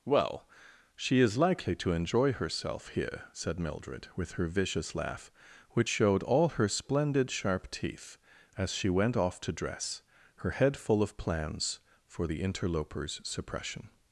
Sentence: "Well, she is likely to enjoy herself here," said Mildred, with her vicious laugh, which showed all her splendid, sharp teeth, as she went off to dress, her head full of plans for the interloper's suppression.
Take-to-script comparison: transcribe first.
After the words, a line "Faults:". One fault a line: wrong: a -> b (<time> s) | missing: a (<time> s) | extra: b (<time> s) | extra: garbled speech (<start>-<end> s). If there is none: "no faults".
"Well, she is likely to enjoy herself here," said Mildred, with her vicious laugh, which showed all her splendid, sharp teeth, as she went off to dress, her head full of plans for the interloper's suppression.
Faults:
no faults